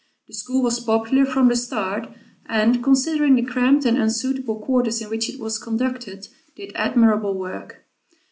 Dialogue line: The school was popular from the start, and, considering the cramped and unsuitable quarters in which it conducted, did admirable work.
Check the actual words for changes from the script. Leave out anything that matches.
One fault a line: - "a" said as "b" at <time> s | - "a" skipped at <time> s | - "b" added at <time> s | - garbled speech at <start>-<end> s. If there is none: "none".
- "was" added at 5.4 s